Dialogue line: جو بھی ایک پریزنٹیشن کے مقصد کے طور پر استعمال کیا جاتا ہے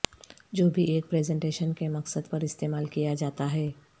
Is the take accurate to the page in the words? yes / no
no